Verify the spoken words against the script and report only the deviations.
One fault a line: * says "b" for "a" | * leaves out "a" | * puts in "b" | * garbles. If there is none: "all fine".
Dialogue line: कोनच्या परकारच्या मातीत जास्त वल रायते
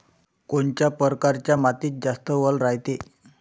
all fine